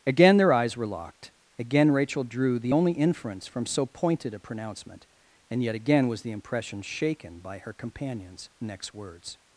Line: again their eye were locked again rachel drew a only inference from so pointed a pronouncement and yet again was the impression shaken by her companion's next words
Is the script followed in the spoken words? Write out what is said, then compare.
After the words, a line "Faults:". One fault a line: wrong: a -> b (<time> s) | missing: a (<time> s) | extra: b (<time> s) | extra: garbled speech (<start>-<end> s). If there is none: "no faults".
again their eyes were locked again rachel drew the only inference from so pointed a pronouncement and yet again was the impression shaken by her companion's next words
Faults:
wrong: eye -> eyes (0.5 s)
wrong: a -> the (2.6 s)